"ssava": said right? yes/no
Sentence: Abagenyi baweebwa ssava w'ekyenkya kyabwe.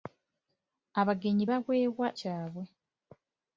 no